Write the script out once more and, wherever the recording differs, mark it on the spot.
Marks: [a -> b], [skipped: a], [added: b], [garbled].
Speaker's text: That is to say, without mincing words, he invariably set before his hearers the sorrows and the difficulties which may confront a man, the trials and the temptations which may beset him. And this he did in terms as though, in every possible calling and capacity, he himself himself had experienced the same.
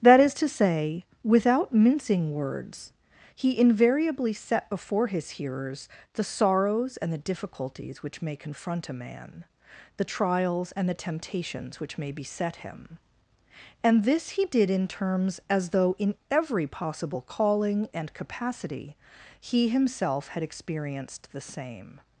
That is to say, without mincing words, he invariably set before his hearers the sorrows and the difficulties which may confront a man, the trials and the temptations which may beset him. And this he did in terms as though, in every possible calling and capacity, he himself [skipped: himself] had experienced the same.